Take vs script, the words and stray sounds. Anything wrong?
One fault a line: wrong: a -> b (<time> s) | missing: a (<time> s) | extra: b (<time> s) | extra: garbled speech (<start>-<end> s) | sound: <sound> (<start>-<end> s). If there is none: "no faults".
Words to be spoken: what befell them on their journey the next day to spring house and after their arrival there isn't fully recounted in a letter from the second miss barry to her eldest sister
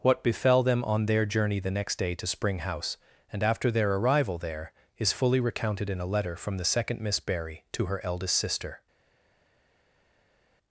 wrong: isn't -> is (5.0 s)